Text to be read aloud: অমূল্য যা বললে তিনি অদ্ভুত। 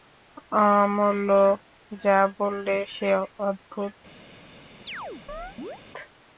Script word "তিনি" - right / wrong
wrong